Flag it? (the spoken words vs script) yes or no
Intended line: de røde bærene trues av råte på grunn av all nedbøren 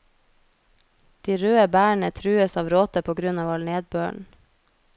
no